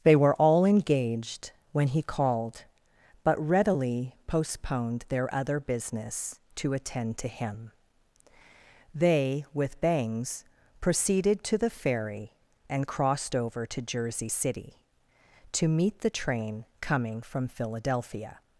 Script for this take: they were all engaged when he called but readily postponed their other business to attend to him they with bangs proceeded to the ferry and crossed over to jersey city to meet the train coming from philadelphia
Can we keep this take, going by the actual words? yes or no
yes